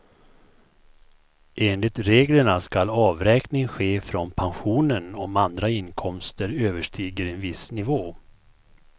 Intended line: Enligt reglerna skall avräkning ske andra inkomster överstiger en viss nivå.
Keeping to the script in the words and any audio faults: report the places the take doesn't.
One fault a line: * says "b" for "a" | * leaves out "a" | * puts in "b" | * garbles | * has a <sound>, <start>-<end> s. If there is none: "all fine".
* puts in "från pensionen om"